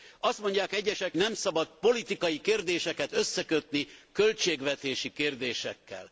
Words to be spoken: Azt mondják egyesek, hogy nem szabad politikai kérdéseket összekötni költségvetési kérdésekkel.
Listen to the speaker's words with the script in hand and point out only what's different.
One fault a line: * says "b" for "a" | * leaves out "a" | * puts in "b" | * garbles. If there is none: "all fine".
* leaves out "hogy"